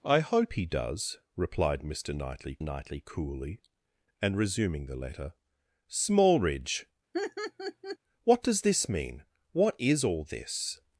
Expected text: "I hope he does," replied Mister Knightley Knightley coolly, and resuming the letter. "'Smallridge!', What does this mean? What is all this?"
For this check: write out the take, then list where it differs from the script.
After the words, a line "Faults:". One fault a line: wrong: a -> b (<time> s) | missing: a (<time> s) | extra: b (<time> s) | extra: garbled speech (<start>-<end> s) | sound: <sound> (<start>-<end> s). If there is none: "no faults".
"I hope he does," replied Mister Knightley Knightley coolly, and resuming the letter. "'Smallridge!', What does this mean? What is all this?"
Faults:
sound: laugh (7.1-8.0 s)